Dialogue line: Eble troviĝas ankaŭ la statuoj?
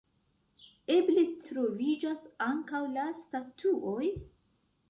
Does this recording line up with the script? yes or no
yes